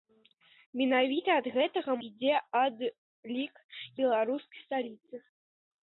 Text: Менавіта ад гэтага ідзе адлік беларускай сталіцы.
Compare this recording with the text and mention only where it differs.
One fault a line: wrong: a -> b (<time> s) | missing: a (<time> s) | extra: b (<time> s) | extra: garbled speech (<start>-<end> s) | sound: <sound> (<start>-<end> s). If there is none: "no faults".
no faults